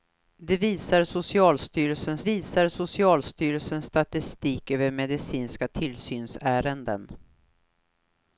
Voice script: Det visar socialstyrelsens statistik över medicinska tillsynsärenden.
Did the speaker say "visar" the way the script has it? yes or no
yes